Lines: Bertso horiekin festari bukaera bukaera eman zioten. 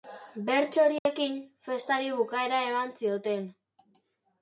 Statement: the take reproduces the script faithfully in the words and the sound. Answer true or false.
false